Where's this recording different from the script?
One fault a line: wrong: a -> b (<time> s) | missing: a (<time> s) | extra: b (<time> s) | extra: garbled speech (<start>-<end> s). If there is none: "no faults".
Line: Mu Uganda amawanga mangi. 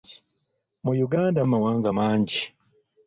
no faults